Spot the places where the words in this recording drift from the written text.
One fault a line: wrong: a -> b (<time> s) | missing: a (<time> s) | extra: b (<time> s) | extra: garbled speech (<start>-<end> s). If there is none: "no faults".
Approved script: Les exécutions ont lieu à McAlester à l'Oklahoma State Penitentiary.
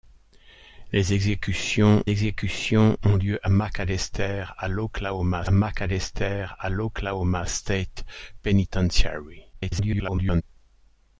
extra: exécutions (2.1 s)
extra: McAlester à l'Oklahoma (5.5 s)
extra: garbled speech (9.5-10.4 s)